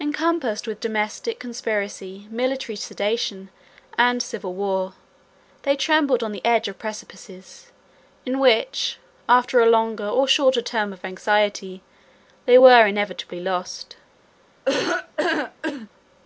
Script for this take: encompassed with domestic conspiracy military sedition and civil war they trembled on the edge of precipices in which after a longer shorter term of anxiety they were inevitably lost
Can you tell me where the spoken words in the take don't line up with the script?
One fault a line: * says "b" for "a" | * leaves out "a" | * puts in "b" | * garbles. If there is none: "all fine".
* puts in "or"